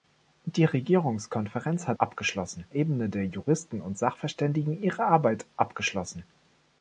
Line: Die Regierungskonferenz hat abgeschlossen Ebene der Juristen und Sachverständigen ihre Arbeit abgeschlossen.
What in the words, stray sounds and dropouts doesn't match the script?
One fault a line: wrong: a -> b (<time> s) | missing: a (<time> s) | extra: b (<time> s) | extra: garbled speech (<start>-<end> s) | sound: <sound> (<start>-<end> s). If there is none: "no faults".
no faults